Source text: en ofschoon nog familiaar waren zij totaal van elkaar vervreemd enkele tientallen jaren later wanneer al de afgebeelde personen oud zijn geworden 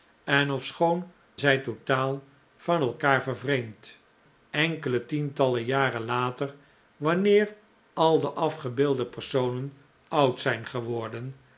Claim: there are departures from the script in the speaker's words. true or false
true